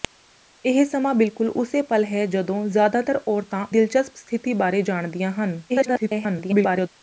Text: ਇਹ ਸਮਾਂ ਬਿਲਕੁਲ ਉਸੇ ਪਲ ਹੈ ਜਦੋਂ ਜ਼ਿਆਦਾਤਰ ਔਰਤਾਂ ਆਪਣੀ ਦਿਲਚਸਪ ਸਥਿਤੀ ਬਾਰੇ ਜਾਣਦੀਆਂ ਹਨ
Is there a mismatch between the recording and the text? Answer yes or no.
yes